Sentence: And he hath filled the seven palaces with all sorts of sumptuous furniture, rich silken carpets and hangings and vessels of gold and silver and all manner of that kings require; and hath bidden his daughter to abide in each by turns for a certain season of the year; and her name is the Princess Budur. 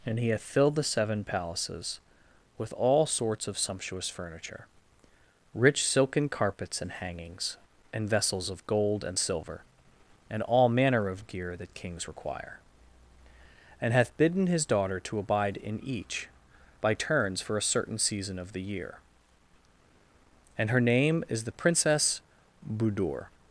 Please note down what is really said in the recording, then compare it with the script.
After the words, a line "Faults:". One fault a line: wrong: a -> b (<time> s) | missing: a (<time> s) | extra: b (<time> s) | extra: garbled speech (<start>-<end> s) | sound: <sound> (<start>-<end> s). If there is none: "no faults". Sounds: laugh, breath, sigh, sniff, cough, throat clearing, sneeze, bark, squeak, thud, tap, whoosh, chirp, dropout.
And he hath filled the seven palaces with all sorts of sumptuous furniture, rich silken carpets and hangings and vessels of gold and silver and all manner of gear that kings require; and hath bidden his daughter to abide in each by turns for a certain season of the year; and her name is the Princess Budur.
Faults:
extra: gear (11.3 s)